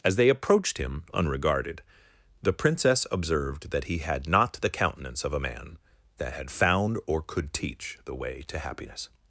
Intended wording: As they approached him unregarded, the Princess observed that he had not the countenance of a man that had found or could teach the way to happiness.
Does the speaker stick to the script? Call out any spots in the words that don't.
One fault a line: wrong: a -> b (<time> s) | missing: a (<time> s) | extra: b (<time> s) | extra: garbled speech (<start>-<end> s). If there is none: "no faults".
no faults